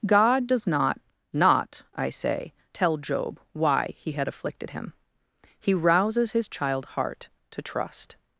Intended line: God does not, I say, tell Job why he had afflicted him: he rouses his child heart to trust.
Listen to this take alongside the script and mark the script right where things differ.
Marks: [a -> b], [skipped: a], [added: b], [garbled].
God does not, [added: not] I say, tell Job why he had afflicted him: he rouses his child heart to trust.